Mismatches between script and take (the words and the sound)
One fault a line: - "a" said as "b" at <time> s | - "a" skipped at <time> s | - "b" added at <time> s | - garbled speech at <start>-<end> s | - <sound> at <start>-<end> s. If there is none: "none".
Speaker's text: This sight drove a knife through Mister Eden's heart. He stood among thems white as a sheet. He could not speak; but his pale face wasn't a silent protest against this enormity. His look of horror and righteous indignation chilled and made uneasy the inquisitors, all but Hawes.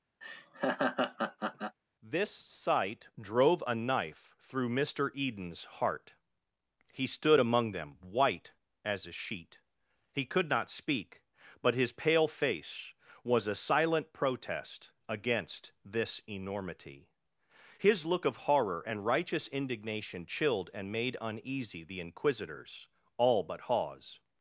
- laugh at 0.2-1.8 s
- "thems" said as "them" at 7.7 s
- "wasn't" said as "was" at 13.2 s